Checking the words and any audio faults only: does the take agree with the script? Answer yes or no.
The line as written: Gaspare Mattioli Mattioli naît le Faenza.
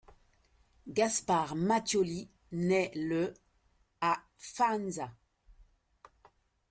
no